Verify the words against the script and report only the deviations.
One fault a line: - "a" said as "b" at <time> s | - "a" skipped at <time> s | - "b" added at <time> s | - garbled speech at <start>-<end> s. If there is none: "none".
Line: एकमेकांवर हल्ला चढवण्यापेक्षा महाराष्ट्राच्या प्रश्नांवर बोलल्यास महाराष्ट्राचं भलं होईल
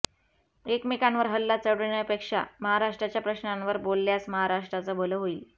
none